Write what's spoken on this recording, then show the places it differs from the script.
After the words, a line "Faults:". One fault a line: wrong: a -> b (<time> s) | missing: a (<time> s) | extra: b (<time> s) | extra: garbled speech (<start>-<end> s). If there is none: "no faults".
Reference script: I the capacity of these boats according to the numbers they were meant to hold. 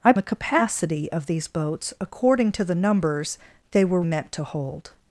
I the capacity of these boats according to the numbers they were meant to hold.
Faults:
no faults